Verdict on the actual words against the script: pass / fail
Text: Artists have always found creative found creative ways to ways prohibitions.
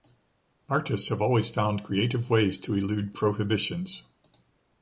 fail